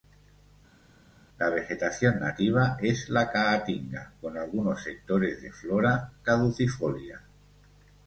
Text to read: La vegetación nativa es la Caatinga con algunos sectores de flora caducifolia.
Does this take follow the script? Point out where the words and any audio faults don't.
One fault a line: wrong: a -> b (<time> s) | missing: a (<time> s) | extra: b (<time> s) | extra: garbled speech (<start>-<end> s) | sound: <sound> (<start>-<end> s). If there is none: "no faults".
no faults